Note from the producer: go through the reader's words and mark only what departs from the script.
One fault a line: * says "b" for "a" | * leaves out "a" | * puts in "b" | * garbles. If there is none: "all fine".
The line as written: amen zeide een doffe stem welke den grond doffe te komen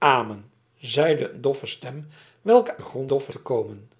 all fine